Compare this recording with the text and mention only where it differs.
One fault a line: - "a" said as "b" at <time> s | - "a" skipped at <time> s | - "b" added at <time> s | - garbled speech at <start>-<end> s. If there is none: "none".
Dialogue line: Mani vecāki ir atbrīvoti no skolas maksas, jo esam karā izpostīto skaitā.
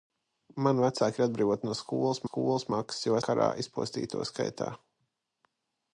- "skolas" added at 2.3 s
- "esam" skipped at 3.2 s